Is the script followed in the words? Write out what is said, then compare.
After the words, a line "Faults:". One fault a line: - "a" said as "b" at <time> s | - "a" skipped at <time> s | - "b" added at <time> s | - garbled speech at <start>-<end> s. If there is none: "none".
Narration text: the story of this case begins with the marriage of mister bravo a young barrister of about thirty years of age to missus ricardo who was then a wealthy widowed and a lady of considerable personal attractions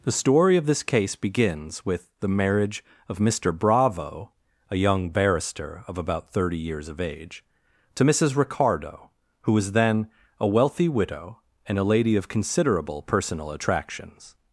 the story of this case begins with the marriage of mister bravo a young barrister of about thirty years of age to missus ricardo who was then a wealthy widow and a lady of considerable personal attractions
Faults:
- "widowed" said as "widow" at 10.9 s